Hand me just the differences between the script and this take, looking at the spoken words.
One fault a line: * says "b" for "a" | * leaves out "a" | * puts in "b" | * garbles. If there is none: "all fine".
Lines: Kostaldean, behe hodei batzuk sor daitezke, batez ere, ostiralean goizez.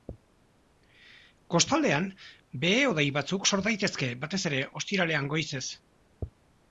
all fine